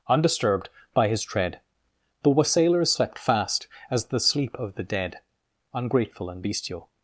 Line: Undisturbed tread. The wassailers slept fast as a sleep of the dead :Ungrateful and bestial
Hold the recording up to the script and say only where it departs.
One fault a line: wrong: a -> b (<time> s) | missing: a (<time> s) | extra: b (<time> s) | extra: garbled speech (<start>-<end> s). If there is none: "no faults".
extra: by his (0.9 s)
wrong: a -> the (4.1 s)